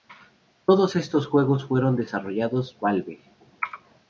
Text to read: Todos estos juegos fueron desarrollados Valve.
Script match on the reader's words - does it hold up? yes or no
yes